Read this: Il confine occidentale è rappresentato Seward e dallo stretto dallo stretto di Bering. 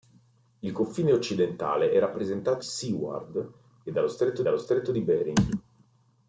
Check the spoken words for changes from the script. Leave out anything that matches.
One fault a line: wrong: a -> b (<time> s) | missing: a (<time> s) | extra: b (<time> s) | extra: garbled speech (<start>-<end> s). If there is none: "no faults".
no faults